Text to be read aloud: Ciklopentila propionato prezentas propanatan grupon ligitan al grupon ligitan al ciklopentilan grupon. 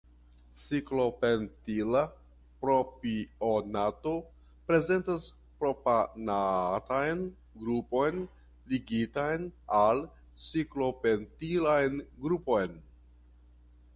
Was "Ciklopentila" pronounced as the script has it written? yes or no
yes